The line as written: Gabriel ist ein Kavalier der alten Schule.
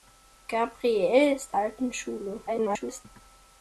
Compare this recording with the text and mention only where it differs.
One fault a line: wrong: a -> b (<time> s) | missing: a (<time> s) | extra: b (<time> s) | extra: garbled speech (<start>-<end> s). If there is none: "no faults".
missing: ein Kavalier der (1.6 s)
extra: garbled speech (2.5-3.0 s)